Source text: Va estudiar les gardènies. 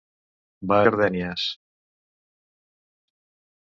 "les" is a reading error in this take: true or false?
true